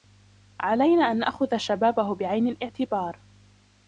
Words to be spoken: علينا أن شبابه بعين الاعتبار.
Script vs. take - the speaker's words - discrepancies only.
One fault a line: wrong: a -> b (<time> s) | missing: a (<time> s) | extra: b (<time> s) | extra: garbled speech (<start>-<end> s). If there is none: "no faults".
extra: نأخذ (1.2 s)